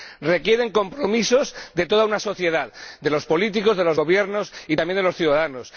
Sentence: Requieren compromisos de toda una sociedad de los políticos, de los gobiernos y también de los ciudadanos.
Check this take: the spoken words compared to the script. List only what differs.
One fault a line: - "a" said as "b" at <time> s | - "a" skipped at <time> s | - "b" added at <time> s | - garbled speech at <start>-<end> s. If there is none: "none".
none